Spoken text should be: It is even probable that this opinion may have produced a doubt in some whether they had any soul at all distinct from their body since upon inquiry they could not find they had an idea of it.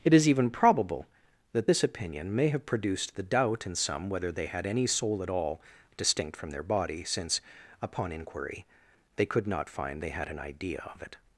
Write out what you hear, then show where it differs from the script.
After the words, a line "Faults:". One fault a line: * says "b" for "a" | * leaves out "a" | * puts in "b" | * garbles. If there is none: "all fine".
It is even probable that this opinion may have produced the doubt in some whether they had any soul at all distinct from their body since upon inquiry they could not find they had an idea of it.
Faults:
* says "the" for "a"